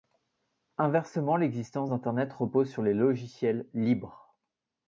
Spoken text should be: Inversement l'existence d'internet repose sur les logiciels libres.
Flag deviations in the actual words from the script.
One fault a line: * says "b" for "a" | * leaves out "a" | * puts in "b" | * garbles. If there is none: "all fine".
all fine